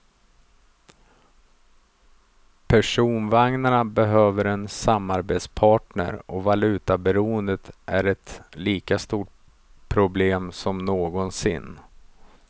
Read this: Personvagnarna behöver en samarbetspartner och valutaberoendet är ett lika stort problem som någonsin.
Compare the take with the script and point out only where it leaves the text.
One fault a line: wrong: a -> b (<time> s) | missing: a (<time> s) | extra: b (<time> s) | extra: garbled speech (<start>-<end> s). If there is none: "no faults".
no faults